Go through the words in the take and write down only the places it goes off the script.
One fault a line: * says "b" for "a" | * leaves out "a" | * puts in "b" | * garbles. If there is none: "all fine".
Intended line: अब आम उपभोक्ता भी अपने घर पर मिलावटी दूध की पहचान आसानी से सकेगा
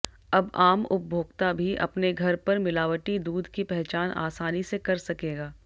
* puts in "कर"